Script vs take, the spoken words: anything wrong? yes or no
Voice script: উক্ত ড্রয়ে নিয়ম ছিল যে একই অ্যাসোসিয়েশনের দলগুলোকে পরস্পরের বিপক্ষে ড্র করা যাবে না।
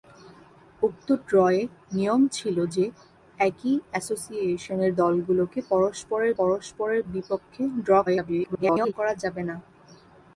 yes